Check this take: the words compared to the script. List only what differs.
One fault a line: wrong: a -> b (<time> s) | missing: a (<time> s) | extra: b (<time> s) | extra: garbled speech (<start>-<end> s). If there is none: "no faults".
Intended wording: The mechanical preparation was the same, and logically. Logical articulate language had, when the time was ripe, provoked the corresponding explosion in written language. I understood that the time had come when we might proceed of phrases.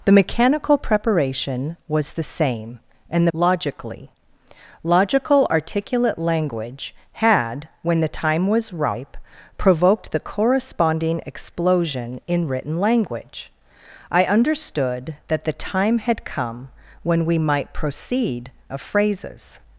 no faults